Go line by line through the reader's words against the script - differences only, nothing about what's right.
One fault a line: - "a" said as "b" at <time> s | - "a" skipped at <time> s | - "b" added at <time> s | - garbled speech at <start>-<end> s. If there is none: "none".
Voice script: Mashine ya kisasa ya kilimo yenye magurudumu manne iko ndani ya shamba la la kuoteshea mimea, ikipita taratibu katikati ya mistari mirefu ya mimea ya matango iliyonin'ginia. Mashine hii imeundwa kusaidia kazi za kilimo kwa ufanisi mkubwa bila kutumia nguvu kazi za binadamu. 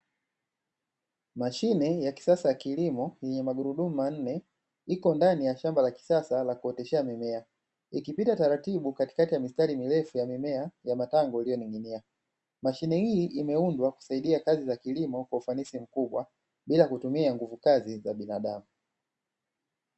- "kisasa" added at 5.9 s